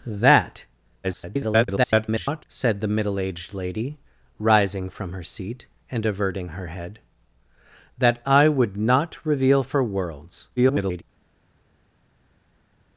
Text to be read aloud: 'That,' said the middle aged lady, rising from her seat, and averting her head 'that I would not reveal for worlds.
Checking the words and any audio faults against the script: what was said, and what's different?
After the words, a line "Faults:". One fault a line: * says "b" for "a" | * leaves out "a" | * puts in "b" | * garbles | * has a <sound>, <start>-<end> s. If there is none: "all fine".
'That,' [garbled] said the middle aged lady, rising from her seat, and averting her head 'that I would not reveal for worlds. [garbled]
Faults:
* garbles
* garbles